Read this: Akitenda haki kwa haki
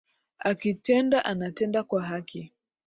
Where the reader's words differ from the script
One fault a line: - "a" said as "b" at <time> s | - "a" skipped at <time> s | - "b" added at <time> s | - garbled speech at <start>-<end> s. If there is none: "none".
- "haki" said as "anatenda" at 1.2 s